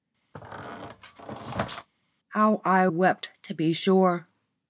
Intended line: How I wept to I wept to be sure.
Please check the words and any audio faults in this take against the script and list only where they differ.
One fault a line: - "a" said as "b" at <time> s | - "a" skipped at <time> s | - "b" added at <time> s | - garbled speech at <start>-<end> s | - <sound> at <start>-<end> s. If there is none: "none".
- squeak at 0.3-1.9 s
- "I wept to" skipped at 3.5 s